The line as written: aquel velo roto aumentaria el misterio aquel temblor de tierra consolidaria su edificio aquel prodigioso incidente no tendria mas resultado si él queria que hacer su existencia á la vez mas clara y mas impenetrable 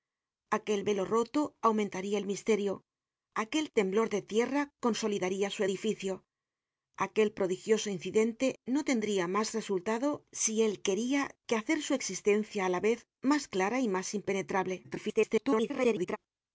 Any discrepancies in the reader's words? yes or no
yes